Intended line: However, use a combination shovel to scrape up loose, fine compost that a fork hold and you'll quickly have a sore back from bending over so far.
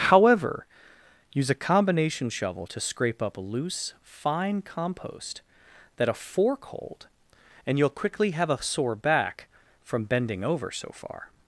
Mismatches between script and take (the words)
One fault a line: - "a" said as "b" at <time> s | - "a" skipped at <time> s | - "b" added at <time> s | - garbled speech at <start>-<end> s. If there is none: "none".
none